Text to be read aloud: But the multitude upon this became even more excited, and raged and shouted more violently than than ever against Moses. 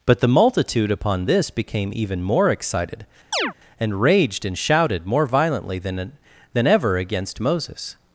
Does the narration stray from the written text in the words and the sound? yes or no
yes